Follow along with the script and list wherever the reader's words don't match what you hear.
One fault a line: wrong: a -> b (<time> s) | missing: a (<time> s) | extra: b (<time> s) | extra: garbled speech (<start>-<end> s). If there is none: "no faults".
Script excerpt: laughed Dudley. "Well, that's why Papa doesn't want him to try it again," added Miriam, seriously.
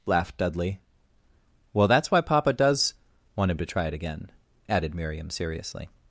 wrong: doesn't -> does (2.5 s)